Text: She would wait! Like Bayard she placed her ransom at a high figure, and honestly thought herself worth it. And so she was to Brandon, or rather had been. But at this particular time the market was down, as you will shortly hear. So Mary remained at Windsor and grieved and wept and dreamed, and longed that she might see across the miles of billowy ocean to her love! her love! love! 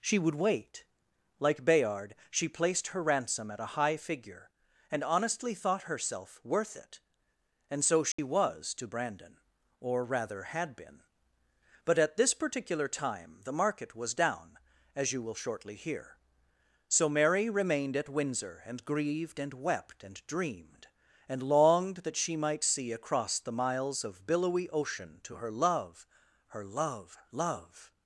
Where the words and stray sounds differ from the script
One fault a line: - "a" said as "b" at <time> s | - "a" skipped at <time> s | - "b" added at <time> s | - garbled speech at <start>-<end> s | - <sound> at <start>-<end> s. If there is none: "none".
- dropout at 8.1-8.2 s